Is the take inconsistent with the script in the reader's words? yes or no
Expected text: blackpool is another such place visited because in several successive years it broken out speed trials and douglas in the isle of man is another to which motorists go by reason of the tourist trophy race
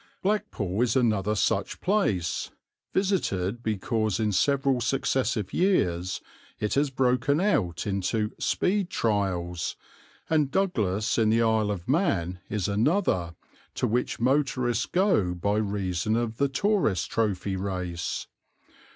yes